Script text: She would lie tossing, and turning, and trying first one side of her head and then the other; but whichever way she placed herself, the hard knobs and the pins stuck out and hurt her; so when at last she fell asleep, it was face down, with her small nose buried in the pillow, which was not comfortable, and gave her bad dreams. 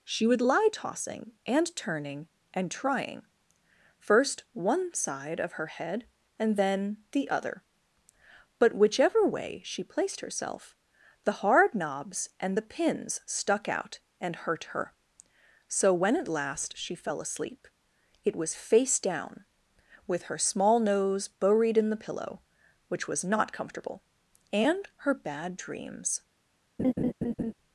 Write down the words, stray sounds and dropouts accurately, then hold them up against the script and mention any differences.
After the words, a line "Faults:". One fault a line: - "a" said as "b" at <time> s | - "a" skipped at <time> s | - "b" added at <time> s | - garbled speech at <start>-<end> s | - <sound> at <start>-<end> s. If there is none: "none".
She would lie tossing, and turning, and trying first one side of her head and then the other; but whichever way she placed herself, the hard knobs and the pins stuck out and hurt her; so when at last she fell asleep, it was face down, with her small nose buried in the pillow, which was not comfortable, and her bad dreams.
Faults:
- "gave" skipped at 24.9 s
- laugh at 26.8-27.5 s